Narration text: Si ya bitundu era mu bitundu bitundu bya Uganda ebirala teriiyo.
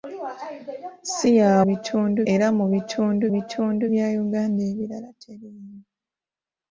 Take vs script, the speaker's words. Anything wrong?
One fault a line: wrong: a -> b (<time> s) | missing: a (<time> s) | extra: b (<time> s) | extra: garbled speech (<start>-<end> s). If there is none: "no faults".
no faults